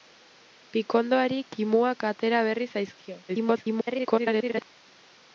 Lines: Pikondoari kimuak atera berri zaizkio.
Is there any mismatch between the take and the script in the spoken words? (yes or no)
yes